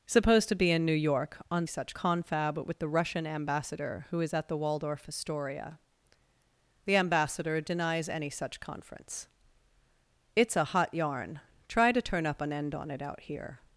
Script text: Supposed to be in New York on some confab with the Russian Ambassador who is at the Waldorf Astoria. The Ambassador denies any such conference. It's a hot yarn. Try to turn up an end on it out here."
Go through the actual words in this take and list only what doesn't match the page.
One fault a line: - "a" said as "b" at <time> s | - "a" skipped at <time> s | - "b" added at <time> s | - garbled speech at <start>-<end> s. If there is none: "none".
- "some" said as "such" at 1.6 s